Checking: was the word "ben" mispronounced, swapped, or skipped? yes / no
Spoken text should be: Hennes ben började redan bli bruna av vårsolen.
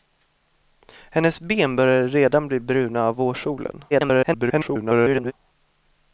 no